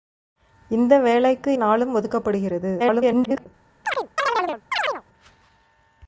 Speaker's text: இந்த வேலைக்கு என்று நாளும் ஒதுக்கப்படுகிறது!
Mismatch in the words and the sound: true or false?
true